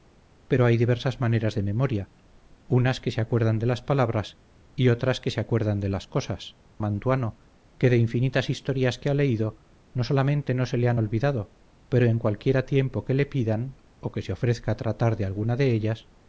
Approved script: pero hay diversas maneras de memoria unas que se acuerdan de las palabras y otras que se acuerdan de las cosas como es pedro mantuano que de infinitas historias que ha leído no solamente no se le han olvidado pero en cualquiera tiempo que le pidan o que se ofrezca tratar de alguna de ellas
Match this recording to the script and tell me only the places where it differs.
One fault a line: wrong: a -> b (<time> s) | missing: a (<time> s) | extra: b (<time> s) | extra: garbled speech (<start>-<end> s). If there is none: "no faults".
missing: como es pedro (6.6 s)